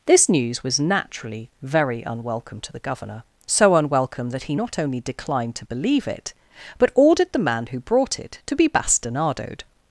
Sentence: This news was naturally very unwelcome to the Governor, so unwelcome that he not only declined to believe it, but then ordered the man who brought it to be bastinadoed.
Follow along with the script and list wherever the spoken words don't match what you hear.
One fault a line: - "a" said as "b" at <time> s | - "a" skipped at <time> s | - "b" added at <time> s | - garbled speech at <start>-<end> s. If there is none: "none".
- "then" skipped at 6.9 s